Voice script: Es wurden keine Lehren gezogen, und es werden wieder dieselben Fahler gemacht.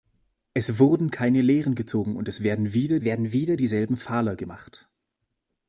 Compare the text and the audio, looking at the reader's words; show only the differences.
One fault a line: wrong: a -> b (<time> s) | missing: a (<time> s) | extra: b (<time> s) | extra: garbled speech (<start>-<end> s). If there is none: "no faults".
extra: werden wieder (3.0 s)